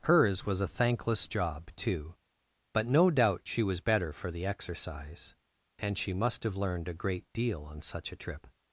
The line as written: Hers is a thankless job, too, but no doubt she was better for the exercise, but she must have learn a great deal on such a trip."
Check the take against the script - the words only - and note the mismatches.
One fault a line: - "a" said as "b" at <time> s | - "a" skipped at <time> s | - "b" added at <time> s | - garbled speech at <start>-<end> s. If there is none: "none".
- "is" said as "was" at 0.5 s
- "but" said as "and" at 5.8 s
- "learn" said as "learned" at 6.5 s